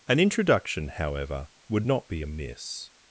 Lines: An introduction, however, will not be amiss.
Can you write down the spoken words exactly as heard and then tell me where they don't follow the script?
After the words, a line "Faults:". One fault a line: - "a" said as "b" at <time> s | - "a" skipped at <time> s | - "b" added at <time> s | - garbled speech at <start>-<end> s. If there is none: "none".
An introduction, however, would not be amiss.
Faults:
- "will" said as "would" at 1.7 s